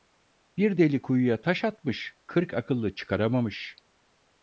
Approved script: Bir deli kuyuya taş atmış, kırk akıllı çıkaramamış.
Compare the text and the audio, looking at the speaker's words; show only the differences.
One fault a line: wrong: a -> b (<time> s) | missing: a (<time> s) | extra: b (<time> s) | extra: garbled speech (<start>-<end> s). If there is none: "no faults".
no faults